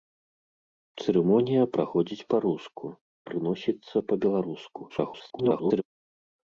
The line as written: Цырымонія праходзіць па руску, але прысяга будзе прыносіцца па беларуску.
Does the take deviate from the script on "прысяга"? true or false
true